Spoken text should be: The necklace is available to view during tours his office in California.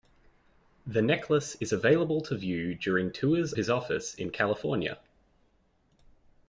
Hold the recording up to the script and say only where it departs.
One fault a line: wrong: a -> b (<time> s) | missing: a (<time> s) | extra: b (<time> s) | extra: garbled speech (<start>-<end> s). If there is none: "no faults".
no faults